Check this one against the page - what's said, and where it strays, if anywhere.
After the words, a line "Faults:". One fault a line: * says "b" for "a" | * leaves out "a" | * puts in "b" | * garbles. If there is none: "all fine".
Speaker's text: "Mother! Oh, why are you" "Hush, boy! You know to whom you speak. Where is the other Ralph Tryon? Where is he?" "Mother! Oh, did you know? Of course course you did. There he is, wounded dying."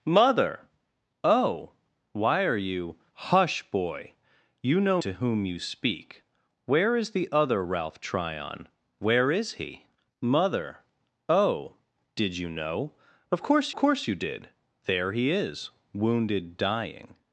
"Mother! Oh, why are you" "Hush, boy! You know to whom you speak. Where is the other Ralph Tryon? Where is he?" "Mother! Oh, did you know? Of course course you did. There he is, wounded dying."
Faults:
all fine